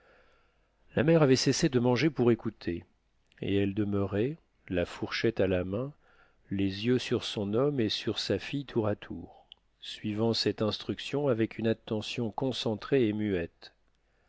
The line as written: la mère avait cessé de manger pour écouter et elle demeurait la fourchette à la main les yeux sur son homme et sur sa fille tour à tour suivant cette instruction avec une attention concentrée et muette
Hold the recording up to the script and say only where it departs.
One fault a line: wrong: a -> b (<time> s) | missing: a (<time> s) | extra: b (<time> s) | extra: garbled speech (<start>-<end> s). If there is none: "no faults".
no faults